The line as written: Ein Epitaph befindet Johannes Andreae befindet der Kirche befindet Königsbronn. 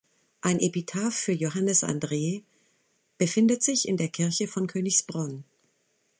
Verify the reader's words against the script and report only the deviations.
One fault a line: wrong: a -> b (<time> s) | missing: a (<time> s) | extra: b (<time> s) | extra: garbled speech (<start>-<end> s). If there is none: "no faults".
wrong: befindet -> für (1.1 s)
extra: sich in (3.6 s)
wrong: befindet -> von (4.5 s)